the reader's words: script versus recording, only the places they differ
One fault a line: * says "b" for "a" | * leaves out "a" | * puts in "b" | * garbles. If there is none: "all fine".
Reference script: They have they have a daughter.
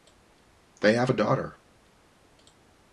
* leaves out "they have"